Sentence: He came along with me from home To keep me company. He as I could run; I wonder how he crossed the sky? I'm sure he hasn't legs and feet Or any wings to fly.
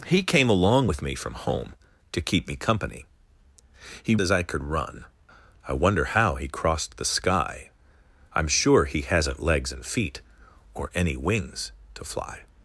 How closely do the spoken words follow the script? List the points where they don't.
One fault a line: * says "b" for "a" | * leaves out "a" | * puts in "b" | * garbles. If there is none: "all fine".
all fine